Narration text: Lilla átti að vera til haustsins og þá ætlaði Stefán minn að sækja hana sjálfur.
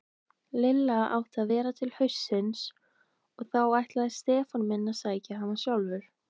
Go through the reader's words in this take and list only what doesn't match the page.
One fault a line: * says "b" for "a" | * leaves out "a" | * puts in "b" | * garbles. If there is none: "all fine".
all fine